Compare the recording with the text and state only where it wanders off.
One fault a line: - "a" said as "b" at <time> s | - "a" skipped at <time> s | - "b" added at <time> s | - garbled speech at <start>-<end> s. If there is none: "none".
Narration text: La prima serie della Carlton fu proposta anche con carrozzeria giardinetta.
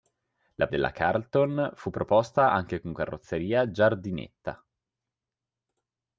- "prima serie" skipped at 0.7 s